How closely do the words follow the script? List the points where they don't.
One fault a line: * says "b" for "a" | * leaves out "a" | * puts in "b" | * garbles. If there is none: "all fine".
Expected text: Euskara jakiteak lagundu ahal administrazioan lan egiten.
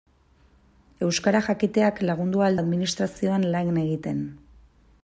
all fine